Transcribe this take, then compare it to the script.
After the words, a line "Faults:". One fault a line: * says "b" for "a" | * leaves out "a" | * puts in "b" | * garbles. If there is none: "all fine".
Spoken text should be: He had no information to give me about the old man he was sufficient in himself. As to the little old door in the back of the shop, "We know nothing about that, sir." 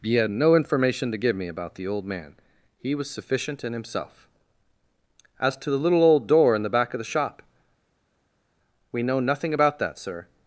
He had no information to give me about the old man he was sufficient in himself. As to the little old door in the back of the shop, "We know nothing about that, sir."
Faults:
all fine